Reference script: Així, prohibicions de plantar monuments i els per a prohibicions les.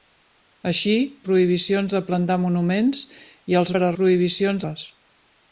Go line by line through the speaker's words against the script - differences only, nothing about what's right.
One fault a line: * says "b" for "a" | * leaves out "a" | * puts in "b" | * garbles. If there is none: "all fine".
all fine